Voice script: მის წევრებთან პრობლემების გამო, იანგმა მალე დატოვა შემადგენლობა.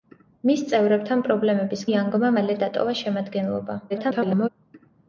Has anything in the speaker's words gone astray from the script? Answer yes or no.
yes